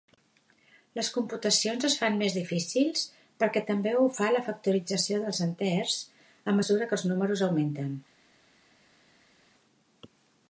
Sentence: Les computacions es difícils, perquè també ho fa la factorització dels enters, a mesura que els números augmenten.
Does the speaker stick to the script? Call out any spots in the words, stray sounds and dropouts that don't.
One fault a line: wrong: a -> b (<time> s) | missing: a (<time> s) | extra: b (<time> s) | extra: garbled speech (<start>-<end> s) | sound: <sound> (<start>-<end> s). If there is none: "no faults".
extra: fan més (2.0 s)